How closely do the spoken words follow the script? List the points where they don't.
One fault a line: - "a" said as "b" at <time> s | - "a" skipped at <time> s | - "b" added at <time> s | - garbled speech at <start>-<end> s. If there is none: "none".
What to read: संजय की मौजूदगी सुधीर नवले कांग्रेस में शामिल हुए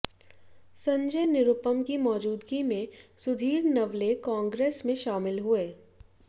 - "निरुपम" added at 1.3 s
- "में" added at 2.6 s